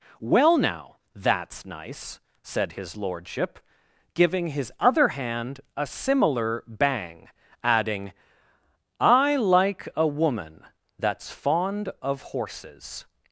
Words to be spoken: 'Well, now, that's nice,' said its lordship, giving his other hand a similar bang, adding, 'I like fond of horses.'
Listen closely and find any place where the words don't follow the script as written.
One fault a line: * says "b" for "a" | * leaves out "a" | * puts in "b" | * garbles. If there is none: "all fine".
* says "his" for "its"
* puts in "a woman that's"